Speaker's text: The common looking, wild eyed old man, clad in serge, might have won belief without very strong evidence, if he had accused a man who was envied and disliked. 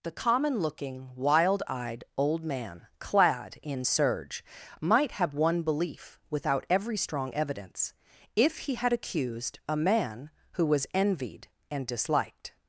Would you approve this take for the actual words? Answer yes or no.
no